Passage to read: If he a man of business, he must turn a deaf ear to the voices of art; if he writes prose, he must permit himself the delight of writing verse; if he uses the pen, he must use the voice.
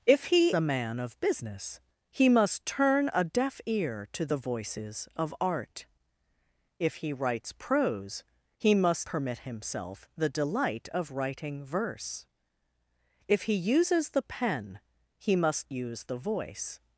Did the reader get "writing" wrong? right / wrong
right